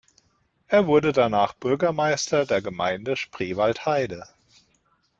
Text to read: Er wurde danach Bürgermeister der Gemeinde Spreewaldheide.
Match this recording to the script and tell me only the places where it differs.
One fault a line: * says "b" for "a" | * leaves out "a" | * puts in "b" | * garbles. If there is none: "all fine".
all fine